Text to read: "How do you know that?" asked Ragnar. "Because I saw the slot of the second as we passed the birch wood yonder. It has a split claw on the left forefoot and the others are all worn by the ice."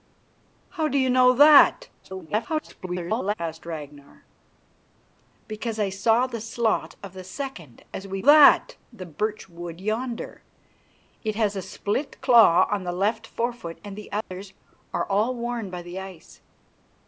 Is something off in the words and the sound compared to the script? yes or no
yes